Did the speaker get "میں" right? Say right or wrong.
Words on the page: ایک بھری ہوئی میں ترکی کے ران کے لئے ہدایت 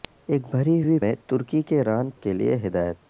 right